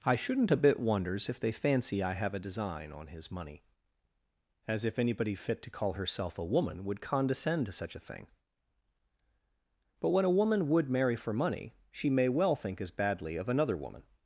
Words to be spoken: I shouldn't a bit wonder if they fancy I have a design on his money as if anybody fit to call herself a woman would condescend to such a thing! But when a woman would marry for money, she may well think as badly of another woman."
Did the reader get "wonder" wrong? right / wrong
wrong